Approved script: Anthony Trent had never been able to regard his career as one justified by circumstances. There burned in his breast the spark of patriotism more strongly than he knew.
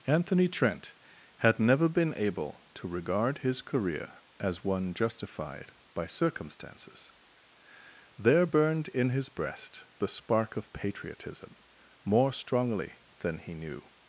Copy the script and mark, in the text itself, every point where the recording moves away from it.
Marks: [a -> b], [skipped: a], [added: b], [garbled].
Anthony Trent had never been able to regard his career as one justified by circumstances. There burned in his breast the spark of patriotism more strongly than he knew.